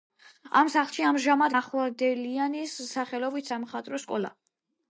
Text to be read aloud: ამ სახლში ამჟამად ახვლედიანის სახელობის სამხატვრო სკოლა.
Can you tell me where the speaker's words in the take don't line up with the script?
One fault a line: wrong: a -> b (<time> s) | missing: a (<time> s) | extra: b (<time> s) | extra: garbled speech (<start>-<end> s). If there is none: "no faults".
no faults